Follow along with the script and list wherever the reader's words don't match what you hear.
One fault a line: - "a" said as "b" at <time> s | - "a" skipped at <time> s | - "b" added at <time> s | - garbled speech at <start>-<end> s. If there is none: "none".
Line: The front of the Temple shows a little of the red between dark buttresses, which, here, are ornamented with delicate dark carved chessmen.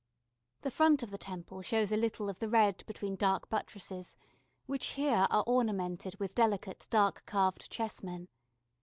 none